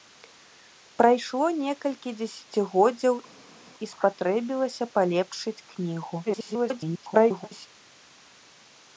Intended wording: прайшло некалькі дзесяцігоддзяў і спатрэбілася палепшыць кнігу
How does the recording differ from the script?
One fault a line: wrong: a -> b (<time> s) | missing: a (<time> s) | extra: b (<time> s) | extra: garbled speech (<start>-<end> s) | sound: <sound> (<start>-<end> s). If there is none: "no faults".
extra: garbled speech (6.2-7.7 s)